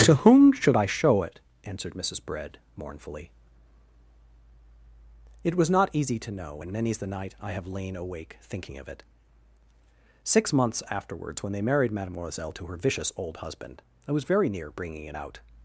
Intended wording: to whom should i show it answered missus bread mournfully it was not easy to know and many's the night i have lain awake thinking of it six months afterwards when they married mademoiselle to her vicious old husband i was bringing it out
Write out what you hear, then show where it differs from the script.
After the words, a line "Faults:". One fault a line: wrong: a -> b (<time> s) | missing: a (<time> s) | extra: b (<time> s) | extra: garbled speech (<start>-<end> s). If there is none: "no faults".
to whom should i show it answered missus bread mournfully it was not easy to know and many's the night i have lain awake thinking of it six months afterwards when they married mademoiselle to her vicious old husband i was very near bringing it out
Faults:
extra: very near (14.2 s)